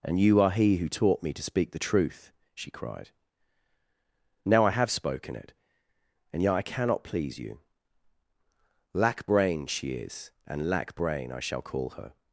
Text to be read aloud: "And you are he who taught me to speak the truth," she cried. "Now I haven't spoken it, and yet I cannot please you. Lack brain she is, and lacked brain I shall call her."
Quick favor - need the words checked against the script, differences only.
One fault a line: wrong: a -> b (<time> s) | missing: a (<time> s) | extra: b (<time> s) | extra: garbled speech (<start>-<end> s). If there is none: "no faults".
wrong: haven't -> have (4.7 s)
wrong: lacked -> lack (10.7 s)